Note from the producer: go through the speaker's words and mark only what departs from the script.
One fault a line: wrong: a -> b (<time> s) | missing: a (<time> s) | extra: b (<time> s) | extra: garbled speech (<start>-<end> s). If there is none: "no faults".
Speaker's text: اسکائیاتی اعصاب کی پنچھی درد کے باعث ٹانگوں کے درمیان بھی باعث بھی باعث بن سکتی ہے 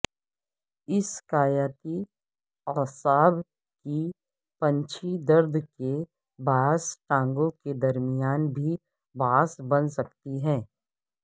missing: بھی باعث (9.6 s)